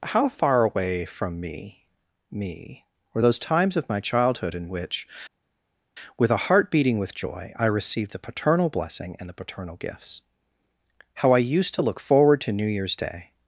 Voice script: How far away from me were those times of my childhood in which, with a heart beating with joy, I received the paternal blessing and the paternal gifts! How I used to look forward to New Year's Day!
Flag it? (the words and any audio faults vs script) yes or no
yes